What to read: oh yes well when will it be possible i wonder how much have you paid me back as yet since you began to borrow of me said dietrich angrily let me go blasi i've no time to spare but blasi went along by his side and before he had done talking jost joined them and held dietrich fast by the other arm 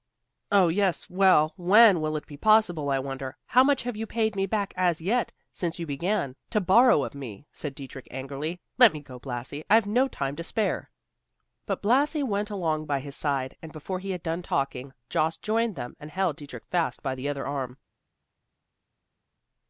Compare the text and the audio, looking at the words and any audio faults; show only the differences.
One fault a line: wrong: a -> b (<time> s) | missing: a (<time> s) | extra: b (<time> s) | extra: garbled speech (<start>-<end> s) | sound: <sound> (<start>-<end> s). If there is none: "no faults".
no faults